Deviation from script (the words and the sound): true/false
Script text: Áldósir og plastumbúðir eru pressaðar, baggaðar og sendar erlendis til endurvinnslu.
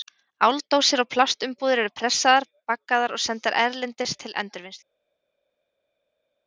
false